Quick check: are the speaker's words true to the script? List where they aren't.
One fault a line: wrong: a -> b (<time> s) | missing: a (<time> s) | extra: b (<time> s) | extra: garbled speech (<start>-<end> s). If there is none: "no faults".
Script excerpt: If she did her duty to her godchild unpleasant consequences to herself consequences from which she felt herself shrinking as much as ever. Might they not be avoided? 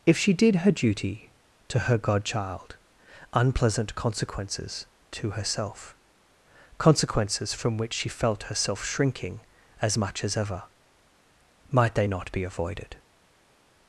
no faults